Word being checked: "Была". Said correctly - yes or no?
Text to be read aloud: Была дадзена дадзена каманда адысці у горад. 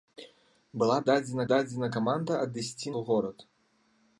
yes